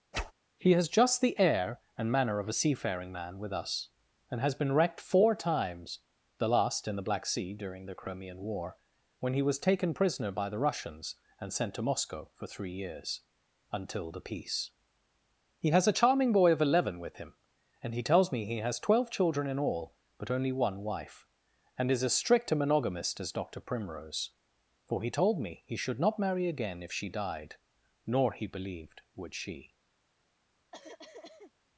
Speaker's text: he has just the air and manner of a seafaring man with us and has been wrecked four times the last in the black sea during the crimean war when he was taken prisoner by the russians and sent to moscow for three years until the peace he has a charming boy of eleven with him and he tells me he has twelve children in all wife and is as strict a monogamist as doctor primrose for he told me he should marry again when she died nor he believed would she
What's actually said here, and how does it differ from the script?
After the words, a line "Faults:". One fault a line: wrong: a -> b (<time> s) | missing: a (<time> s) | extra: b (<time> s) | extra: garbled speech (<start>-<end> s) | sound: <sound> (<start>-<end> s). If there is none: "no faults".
he has just the air and manner of a seafaring man with us and has been wrecked four times the last in the black sea during the crimean war when he was taken prisoner by the russians and sent to moscow for three years until the peace he has a charming boy of eleven with him and he tells me he has twelve children in all but only one wife and is as strict a monogamist as doctor primrose for he told me he should not marry again if she died nor he believed would she
Faults:
sound: whoosh (0.1-0.3 s)
extra: but only one (20.2 s)
extra: not (26.0 s)
wrong: when -> if (26.8 s)
sound: cough (30.7-31.5 s)